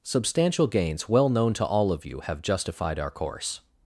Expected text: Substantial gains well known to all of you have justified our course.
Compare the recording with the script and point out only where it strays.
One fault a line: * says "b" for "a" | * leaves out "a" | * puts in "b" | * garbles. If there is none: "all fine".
all fine